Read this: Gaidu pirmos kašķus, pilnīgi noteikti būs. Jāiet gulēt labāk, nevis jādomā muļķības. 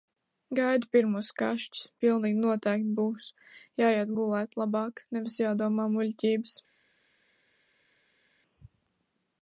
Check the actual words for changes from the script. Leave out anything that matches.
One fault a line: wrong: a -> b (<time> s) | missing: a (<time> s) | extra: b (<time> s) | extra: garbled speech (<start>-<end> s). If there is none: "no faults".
no faults